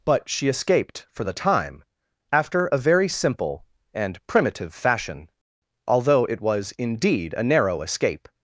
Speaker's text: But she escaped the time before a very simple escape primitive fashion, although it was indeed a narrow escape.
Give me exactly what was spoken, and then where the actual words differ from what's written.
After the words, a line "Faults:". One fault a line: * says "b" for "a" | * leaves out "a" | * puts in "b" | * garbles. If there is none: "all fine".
But she escaped for the time after a very simple and primitive fashion, although it was indeed a narrow escape.
Faults:
* puts in "for"
* says "after" for "before"
* says "and" for "escape"